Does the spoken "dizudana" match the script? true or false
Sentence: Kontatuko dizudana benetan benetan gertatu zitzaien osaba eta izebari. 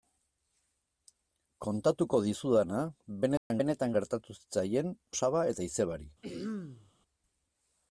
true